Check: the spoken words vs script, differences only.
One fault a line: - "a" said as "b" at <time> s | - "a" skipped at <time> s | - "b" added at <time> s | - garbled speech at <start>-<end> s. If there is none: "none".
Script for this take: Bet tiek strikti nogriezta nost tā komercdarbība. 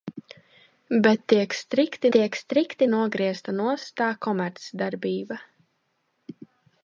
- "tiek strikti" added at 2.2 s